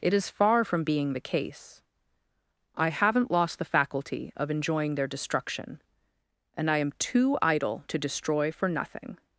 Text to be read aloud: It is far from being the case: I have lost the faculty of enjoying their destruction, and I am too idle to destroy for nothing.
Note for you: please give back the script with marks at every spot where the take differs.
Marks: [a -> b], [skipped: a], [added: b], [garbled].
It is far from being the case: I [have -> haven't] lost the faculty of enjoying their destruction, and I am too idle to destroy for nothing.